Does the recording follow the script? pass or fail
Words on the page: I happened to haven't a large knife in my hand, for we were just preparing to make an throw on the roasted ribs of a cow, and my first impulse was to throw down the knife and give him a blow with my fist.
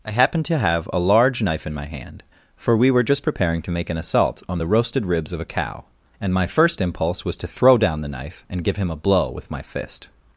fail